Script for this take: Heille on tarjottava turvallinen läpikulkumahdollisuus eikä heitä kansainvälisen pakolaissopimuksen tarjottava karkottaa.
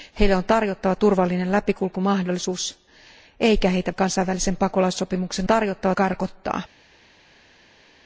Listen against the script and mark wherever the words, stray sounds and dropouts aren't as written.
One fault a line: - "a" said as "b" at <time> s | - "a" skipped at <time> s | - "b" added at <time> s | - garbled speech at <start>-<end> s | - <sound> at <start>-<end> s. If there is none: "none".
none